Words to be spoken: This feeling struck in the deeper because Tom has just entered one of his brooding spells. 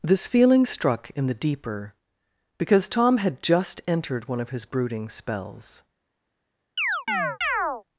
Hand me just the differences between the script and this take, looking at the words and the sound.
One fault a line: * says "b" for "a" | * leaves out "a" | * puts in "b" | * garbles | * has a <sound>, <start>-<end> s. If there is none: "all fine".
* says "had" for "has"
* has a chirp, 6.8-7.8 s